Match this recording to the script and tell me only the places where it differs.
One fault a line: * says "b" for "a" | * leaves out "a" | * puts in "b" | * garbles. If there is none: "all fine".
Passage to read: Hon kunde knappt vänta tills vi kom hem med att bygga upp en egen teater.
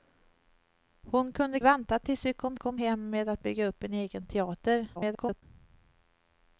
* leaves out "knappt"
* puts in "kom"
* garbles